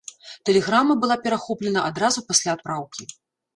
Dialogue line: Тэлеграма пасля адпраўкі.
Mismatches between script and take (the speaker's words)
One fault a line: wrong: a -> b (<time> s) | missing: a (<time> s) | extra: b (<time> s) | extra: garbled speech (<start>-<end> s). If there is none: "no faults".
extra: была перахоплена адразу (1.0 s)